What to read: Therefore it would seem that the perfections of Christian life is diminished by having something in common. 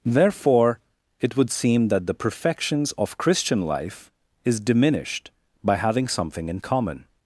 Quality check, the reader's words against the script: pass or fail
pass